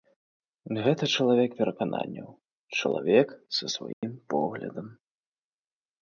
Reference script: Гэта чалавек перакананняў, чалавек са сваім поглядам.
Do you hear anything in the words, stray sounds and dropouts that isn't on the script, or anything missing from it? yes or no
yes